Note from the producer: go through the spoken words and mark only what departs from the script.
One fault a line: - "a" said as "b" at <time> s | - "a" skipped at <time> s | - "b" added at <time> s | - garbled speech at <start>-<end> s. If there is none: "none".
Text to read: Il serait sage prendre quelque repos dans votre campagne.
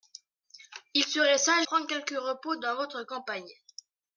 none